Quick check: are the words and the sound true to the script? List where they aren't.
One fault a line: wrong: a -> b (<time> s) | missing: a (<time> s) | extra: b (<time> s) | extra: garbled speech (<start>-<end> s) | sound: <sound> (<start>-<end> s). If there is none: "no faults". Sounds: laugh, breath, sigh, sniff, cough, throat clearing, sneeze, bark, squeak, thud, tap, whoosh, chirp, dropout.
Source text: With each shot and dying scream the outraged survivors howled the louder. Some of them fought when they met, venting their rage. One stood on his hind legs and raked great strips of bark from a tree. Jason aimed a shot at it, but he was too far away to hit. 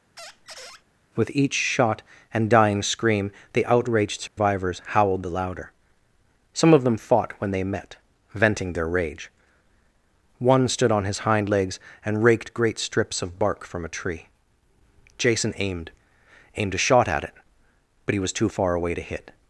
sound: squeak (0.2-0.8 s)
sound: dropout (4.3-4.4 s)
extra: aimed (16.6 s)